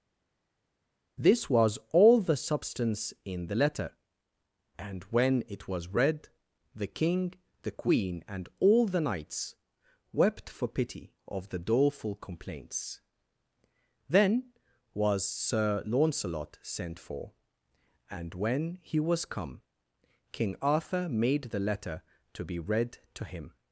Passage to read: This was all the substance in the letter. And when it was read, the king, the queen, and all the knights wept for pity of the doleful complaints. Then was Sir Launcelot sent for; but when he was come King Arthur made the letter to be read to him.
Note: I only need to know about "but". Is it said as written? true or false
false